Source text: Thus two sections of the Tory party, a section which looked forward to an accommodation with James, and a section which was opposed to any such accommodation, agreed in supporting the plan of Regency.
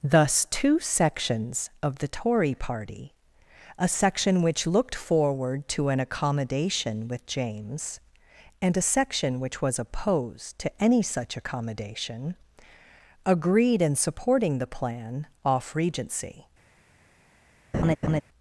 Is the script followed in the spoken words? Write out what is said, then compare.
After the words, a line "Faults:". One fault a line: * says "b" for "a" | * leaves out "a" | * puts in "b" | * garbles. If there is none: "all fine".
Thus two sections of the Tory party, a section which looked forward to an accommodation with James, and a section which was opposed to any such accommodation, agreed in supporting the plan off Regency.
Faults:
* says "off" for "of"